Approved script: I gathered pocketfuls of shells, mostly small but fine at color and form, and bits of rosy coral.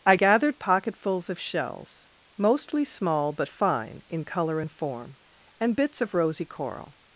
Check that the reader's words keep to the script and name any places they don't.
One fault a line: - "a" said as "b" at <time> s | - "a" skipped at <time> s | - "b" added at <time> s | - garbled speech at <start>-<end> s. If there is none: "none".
- "at" said as "in" at 4.1 s